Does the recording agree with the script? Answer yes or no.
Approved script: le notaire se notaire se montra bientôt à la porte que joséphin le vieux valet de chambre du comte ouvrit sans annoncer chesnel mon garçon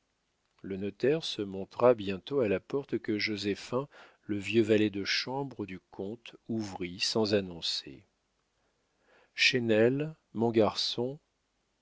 no